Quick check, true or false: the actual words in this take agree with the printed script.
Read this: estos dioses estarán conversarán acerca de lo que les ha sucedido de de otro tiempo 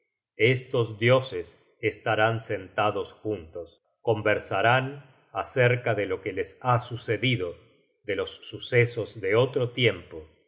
false